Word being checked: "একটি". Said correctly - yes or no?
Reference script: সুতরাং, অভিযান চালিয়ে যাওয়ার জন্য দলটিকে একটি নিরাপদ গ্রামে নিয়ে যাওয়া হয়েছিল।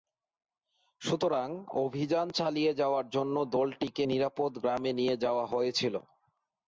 no